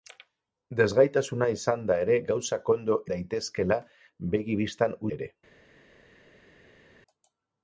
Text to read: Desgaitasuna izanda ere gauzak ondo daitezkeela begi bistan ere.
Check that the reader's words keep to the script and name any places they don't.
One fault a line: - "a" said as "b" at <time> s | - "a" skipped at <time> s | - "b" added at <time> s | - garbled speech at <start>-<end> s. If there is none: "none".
none